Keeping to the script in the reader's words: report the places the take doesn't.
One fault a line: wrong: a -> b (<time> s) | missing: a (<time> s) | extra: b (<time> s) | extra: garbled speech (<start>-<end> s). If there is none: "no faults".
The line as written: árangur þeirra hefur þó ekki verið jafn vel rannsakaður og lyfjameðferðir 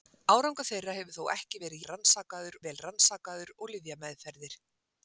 wrong: jafn -> rannsakaður (1.9 s)